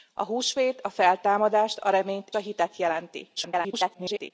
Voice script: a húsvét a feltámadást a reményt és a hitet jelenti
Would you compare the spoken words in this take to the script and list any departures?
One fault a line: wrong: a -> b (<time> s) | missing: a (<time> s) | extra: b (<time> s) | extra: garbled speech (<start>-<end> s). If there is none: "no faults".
missing: és (2.3 s)
extra: garbled speech (3.4-4.3 s)